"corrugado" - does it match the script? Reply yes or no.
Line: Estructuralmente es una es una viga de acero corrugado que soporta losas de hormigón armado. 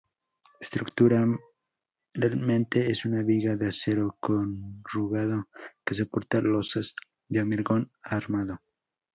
yes